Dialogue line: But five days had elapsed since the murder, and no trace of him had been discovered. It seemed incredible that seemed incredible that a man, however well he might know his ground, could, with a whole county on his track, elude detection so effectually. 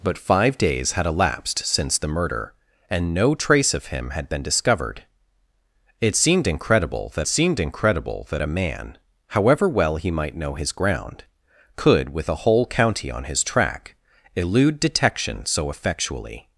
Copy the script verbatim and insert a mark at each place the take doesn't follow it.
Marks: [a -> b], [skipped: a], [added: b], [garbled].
But five days had elapsed since the murder, and no trace of him had been discovered. It seemed incredible that seemed incredible that a man, however well he might know his ground, could, with a whole county on his track, elude detection so effectually.